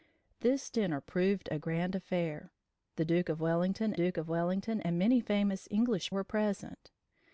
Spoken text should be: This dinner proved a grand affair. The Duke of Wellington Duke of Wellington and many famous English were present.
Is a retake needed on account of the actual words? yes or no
no